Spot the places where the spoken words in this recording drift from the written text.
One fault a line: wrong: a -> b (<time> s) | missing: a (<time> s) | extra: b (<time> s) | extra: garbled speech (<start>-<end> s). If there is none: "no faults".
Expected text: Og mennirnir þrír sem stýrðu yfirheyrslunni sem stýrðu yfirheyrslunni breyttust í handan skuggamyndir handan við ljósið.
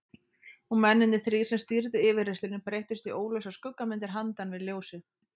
missing: sem stýrðu yfirheyrslunni (2.6 s)
wrong: handan -> óljósar (3.2 s)